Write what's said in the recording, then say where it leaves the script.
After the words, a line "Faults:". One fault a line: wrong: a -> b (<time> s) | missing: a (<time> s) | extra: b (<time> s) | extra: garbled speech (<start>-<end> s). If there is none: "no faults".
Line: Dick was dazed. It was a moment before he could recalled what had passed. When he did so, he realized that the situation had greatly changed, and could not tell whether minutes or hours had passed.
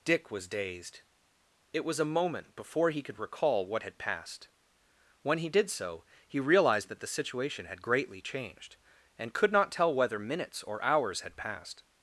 Dick was dazed. It was a moment before he could recall what had passed. When he did so, he realized that the situation had greatly changed, and could not tell whether minutes or hours had passed.
Faults:
wrong: recalled -> recall (3.2 s)